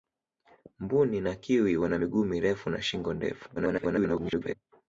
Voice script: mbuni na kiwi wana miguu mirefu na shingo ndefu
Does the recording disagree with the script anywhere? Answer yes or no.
yes